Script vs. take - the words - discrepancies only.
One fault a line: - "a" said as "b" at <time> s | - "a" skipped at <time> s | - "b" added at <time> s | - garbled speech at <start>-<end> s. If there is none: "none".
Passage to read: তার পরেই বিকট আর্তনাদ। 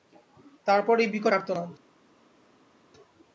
none